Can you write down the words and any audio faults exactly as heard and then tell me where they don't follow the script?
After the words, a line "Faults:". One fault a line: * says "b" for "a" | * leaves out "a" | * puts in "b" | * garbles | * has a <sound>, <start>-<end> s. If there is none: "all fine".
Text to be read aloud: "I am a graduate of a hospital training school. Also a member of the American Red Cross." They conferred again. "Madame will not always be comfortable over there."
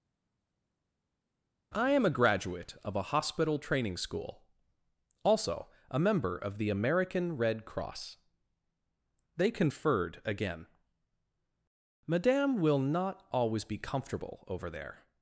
"I am a graduate of a hospital training school. Also a member of the American Red Cross." They conferred again. "Madame will not always be comfortable over there."
Faults:
all fine